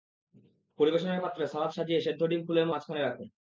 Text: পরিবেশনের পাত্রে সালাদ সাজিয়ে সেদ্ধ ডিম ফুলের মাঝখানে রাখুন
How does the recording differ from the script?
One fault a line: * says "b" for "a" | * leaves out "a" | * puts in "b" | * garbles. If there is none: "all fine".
all fine